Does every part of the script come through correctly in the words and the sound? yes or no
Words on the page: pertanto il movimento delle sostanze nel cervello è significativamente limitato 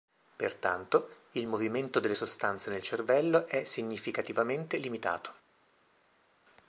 yes